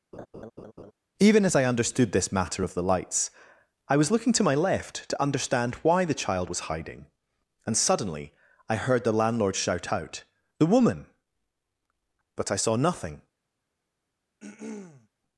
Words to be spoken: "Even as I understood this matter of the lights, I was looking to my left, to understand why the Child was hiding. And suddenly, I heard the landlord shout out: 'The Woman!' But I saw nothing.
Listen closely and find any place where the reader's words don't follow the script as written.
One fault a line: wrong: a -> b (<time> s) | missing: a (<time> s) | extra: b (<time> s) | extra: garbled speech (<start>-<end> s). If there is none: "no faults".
no faults